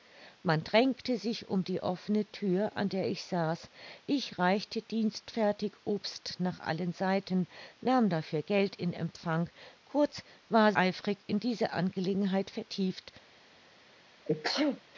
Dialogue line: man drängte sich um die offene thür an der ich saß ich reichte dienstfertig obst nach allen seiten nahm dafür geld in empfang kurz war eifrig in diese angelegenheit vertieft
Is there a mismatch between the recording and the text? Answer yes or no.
no